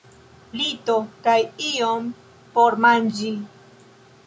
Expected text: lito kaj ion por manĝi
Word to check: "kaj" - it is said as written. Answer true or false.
true